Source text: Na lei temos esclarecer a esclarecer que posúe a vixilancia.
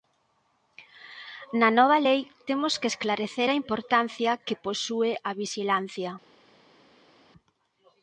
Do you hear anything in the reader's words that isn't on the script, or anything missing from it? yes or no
yes